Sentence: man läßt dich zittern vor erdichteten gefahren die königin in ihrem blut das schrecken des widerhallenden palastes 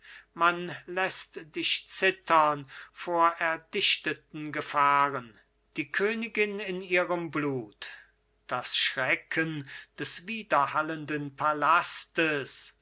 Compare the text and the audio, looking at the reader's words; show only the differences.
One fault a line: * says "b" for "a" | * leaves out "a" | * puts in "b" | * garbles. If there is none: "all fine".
all fine